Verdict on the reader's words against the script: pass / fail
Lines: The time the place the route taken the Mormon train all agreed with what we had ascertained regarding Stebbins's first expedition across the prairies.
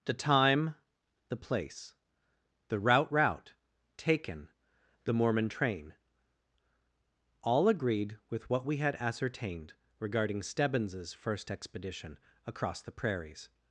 fail